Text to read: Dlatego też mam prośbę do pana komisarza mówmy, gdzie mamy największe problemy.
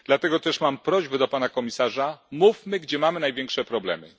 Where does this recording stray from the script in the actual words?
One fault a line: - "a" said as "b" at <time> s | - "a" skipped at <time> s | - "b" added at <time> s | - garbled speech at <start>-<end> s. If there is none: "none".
none